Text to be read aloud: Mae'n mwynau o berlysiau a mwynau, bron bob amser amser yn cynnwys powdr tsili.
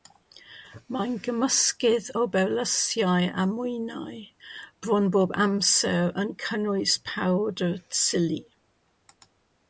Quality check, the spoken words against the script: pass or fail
fail